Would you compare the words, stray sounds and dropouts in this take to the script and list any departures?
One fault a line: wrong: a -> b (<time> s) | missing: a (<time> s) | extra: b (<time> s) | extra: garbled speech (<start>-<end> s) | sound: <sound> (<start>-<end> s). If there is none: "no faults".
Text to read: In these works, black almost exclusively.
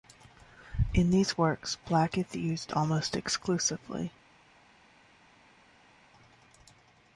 extra: is used (2.2 s)